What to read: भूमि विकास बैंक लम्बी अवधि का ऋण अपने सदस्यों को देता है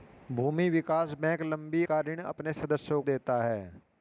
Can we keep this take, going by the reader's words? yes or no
no